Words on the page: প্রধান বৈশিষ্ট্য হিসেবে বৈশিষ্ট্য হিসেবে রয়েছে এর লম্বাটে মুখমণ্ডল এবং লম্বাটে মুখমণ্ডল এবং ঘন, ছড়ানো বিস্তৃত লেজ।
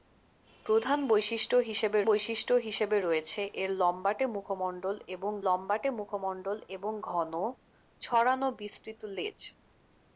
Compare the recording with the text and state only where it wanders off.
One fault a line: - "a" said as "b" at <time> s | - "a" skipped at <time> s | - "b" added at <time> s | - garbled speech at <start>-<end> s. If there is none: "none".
none